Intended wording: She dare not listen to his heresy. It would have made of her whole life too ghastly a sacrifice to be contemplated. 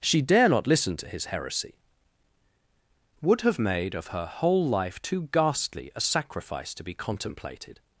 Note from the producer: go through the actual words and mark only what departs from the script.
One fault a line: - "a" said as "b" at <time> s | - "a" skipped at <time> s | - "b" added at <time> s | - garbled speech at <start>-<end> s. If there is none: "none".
- "It" skipped at 1.8 s